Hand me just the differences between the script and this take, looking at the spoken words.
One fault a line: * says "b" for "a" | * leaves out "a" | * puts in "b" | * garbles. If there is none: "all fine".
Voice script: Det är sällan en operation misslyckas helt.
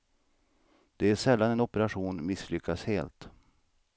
all fine